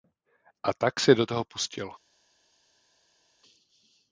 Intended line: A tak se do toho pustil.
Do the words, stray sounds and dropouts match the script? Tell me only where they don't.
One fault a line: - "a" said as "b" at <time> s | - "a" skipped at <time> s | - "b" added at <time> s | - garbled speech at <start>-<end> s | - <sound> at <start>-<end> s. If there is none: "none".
none